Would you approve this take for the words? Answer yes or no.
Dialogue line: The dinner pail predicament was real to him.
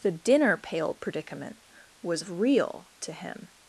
yes